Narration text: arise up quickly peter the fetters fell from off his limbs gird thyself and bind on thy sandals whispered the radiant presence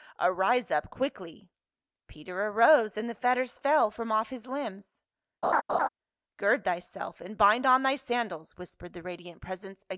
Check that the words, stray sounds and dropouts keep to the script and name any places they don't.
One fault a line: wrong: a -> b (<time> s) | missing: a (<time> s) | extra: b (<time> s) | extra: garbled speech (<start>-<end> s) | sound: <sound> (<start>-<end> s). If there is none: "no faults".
extra: arose and (2.5 s)
sound: laugh (5.4-5.9 s)